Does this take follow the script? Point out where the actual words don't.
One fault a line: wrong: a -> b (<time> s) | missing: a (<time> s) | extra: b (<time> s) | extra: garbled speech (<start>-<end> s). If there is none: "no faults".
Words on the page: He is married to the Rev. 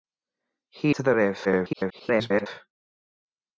missing: is married (0.9 s)
extra: garbled speech (1.4-2.5 s)